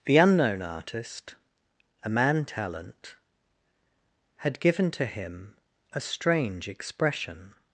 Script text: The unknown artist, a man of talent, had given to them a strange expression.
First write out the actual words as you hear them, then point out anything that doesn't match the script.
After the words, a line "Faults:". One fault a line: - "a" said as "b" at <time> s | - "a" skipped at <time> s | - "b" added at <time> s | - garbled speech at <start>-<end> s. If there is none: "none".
The unknown artist, a man talent, had given to him a strange expression.
Faults:
- "of" skipped at 2.5 s
- "them" said as "him" at 5.1 s